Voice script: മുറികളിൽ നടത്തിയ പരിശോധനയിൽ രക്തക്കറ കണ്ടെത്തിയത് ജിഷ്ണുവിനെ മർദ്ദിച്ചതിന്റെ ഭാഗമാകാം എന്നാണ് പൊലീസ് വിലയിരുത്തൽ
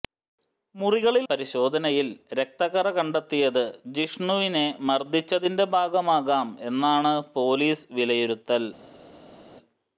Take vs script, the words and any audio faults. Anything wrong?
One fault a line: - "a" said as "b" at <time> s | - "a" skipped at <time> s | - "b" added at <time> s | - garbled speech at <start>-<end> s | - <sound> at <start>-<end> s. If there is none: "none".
- "നടത്തിയ" skipped at 1.2 s